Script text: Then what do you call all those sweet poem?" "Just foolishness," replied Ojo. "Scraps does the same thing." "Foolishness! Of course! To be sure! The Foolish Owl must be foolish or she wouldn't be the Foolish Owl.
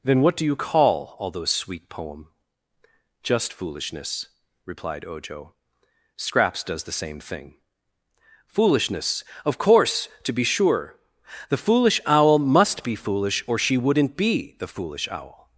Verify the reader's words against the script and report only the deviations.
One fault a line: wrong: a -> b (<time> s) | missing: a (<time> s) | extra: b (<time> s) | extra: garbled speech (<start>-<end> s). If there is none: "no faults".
no faults